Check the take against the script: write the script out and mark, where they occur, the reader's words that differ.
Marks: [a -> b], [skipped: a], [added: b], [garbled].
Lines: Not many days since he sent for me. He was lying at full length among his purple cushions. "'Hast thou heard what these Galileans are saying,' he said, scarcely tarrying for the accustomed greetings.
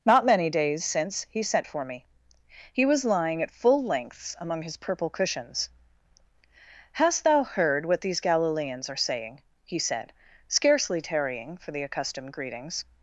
Not many days since he sent for me. He was lying at full [length -> lengths] among his purple cushions. "'Hast thou heard what these Galileans are saying,' he said, scarcely tarrying for the accustomed greetings.